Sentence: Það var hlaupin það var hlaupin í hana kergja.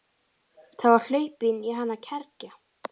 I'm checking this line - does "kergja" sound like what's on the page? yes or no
yes